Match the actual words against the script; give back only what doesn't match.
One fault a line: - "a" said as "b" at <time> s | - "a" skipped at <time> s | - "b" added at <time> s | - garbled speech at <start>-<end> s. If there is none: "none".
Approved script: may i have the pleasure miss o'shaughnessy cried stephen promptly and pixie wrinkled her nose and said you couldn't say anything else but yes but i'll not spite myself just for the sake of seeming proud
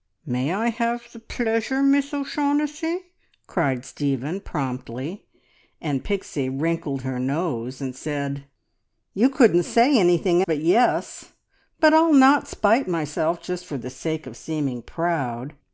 - "else" skipped at 10.4 s